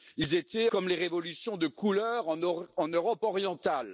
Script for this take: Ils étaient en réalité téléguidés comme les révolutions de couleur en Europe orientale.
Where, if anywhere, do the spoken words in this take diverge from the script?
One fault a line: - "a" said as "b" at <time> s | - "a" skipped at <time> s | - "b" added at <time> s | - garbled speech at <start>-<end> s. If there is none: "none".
- "en réalité téléguidés" skipped at 0.7 s